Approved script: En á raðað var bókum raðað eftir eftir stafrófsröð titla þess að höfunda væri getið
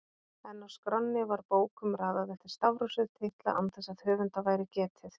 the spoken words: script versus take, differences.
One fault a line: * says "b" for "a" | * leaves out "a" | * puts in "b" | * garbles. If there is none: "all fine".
* says "skránni" for "raðað"
* leaves out "eftir"
* puts in "án"